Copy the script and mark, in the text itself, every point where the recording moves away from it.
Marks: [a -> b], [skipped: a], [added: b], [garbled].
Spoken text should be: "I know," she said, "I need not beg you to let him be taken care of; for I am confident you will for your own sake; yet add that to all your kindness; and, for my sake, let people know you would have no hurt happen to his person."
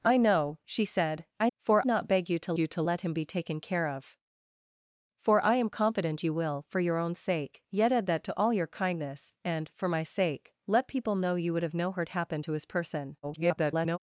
"I know," she said, "I [need -> for] not beg you to [added: you to] let him be taken care of; for I am confident you will for your own sake; yet add that to all your kindness; and, for my sake, let people know you would have no hurt happen to his person." [garbled]